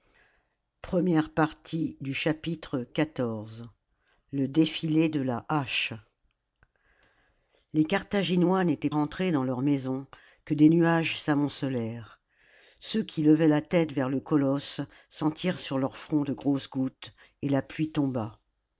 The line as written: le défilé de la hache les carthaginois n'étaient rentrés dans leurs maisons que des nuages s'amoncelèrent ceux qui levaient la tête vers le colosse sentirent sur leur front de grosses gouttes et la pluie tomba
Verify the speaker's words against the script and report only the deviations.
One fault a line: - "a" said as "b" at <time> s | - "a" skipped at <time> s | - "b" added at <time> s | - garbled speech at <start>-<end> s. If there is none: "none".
none